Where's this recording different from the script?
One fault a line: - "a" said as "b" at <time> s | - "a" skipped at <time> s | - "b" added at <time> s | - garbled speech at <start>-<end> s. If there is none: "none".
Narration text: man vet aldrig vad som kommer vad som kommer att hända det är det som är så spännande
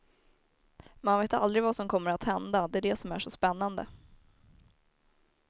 - "vad som kommer" skipped at 2.1 s